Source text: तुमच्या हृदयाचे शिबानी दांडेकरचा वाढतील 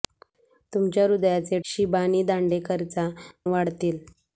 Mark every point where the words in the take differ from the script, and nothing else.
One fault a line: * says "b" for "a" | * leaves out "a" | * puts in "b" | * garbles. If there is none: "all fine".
all fine